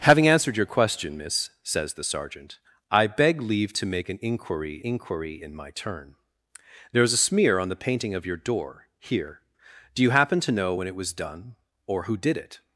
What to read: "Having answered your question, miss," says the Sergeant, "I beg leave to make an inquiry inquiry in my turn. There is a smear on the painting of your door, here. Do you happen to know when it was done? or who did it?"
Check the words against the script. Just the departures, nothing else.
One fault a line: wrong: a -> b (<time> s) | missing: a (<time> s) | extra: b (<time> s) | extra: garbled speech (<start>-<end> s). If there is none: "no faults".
no faults